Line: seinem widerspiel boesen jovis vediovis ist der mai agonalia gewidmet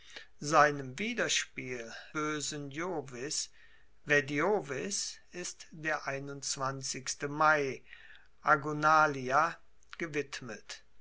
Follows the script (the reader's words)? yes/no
yes